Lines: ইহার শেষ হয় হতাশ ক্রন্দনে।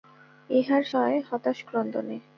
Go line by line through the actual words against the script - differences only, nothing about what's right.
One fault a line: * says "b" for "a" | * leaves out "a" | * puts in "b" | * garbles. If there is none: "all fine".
* leaves out "শেষ"